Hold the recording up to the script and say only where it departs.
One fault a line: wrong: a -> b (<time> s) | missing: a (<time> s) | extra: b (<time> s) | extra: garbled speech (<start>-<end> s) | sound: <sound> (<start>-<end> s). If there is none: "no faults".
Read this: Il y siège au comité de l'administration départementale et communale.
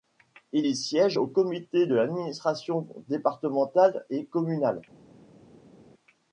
no faults